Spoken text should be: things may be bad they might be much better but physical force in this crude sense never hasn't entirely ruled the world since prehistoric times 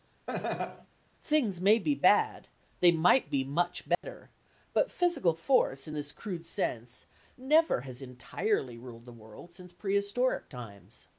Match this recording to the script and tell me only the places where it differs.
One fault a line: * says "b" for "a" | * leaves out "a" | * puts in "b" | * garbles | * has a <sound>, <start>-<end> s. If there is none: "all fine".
* has a laugh, 0.3-0.9 s
* has a dropout, 3.9-4.0 s
* says "has" for "hasn't"